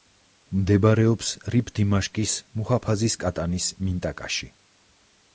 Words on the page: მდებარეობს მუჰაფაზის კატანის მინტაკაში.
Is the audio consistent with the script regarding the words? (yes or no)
no